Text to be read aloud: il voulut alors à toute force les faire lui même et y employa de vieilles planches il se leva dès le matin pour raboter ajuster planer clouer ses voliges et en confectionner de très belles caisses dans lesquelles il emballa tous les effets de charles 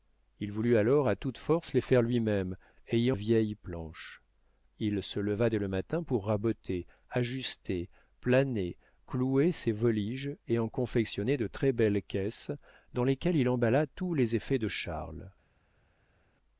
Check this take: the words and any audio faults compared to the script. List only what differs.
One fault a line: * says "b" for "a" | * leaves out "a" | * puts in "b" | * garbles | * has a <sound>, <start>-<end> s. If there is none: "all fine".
* leaves out "employa de"